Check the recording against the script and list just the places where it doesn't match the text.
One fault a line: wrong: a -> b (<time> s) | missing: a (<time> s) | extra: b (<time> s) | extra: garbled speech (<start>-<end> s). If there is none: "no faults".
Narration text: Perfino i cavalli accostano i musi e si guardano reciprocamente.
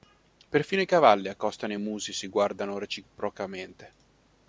no faults